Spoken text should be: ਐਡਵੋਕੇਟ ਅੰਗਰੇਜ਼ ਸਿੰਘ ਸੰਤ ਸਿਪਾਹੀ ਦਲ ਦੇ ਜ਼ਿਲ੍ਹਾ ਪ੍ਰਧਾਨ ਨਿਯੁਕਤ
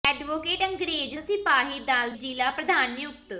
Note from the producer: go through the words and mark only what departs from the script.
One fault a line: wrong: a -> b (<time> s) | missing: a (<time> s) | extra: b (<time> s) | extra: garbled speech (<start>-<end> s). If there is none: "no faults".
missing: ਸਿੰਘ ਸੰਤ (1.1 s)
missing: ਦੇ (2.1 s)